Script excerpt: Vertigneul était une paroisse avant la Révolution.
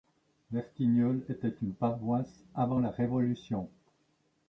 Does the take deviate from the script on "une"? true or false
false